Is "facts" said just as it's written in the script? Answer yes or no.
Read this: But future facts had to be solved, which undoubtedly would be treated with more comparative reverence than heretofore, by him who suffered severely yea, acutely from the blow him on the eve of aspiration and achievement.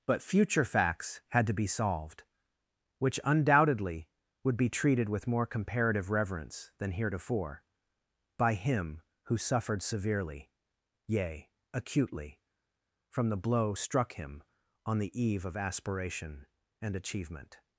yes